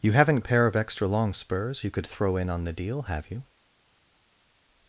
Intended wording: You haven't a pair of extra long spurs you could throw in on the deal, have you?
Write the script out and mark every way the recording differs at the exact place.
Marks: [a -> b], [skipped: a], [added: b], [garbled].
You haven't a pair of extra long spurs you could throw in on the deal, have you?